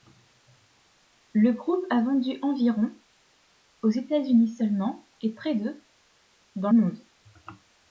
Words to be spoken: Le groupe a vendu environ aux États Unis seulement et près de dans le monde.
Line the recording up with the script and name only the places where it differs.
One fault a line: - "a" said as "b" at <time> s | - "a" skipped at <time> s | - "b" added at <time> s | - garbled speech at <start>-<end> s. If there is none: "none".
- "le" skipped at 6.7 s